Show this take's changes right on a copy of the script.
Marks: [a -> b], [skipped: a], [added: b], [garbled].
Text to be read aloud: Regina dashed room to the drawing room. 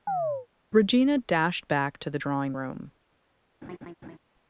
Regina dashed [room -> back] to the drawing room.